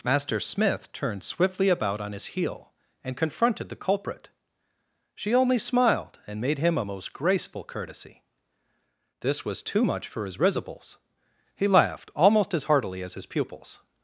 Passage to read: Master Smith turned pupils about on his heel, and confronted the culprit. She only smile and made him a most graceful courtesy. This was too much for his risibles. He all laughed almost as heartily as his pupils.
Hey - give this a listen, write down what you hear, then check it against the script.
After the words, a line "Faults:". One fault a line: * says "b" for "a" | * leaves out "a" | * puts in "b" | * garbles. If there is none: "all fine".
Master Smith turned swiftly about on his heel, and confronted the culprit. She only smiled and made him a most graceful courtesy. This was too much for his risibles. He laughed almost as heartily as his pupils.
Faults:
* says "swiftly" for "pupils"
* says "smiled" for "smile"
* leaves out "all"